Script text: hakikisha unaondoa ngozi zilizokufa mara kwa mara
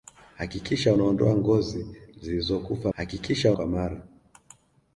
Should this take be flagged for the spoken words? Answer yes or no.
yes